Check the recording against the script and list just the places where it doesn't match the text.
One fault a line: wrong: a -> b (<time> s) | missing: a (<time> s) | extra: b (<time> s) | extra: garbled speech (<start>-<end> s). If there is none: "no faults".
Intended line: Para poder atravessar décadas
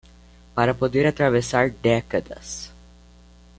no faults